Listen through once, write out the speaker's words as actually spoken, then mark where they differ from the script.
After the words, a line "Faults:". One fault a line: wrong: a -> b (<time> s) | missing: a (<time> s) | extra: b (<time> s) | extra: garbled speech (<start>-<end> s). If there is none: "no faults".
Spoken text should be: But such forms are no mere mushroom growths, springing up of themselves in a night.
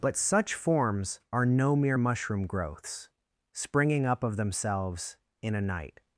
But such forms are no mere mushroom growths, springing up of themselves in a night.
Faults:
no faults